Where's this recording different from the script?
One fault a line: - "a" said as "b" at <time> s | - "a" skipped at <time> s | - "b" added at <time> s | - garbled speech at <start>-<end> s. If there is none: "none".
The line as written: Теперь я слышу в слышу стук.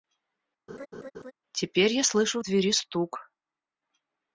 - "слышу" said as "двери" at 2.4 s